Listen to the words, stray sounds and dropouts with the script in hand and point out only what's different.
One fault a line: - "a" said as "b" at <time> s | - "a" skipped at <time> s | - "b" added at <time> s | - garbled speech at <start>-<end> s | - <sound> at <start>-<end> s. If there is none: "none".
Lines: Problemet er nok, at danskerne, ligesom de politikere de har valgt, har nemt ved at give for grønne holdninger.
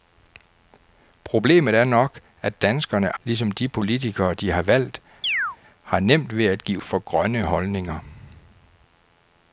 - chirp at 5.2-5.6 s